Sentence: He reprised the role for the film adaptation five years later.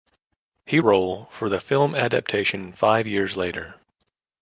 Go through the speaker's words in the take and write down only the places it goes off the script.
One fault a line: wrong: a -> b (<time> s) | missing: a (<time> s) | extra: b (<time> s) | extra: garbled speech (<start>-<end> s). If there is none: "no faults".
missing: reprised the (0.8 s)